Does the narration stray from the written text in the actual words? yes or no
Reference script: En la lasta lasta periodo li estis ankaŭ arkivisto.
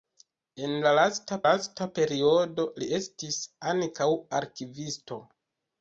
no